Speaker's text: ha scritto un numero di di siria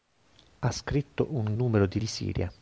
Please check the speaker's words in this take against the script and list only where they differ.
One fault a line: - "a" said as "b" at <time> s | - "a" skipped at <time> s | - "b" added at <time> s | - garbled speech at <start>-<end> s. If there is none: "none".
none